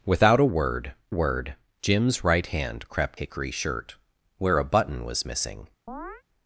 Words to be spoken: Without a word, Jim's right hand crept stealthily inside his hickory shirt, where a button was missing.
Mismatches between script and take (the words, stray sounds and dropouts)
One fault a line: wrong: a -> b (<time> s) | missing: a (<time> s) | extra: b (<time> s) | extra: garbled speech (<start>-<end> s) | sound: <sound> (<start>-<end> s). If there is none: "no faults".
extra: word (1.1 s)
missing: stealthily inside his (3.2 s)
sound: chirp (5.9-6.2 s)